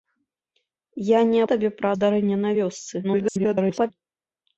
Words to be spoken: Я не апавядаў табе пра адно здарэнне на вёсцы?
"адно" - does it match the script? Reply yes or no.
no